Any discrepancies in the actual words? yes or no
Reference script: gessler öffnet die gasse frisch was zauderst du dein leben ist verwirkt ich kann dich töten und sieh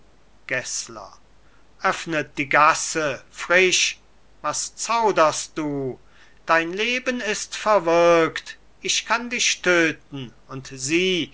no